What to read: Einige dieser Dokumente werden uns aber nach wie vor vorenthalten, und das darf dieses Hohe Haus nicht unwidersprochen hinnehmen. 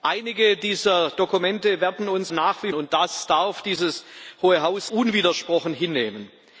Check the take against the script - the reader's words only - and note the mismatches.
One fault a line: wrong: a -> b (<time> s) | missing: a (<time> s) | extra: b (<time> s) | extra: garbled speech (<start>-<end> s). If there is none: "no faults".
missing: aber (2.3 s)
missing: vor vorenthalten (2.7 s)
missing: nicht (4.9 s)